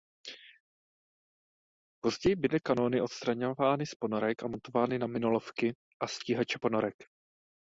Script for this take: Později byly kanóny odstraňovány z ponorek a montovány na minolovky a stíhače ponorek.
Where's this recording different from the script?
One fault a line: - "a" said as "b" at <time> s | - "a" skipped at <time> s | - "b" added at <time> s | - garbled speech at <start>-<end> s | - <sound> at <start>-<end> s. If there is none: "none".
none